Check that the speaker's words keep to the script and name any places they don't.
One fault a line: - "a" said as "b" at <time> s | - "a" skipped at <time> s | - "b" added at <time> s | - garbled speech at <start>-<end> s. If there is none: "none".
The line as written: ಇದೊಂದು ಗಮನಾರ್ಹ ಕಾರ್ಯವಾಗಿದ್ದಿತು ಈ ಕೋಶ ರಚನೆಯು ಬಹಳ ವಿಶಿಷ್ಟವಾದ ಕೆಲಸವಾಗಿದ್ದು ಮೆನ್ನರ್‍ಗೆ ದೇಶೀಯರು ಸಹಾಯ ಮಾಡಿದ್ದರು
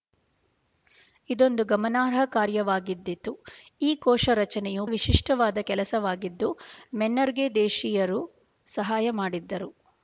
- "ಬಹಳ" skipped at 4.8 s